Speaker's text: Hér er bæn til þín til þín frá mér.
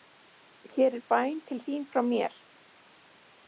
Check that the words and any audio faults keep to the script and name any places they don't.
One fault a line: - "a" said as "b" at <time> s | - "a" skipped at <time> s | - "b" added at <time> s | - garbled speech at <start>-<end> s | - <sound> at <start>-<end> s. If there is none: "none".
- "til þín" skipped at 1.9 s